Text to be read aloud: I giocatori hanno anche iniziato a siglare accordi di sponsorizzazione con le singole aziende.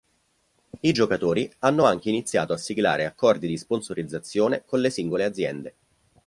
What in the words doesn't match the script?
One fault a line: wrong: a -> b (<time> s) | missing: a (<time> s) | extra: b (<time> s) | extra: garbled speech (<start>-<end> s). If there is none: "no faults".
no faults